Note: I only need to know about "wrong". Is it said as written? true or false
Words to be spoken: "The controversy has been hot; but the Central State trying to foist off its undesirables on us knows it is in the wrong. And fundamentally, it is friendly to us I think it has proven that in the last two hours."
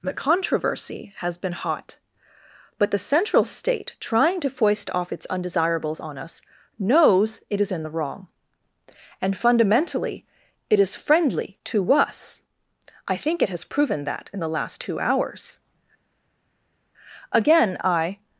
true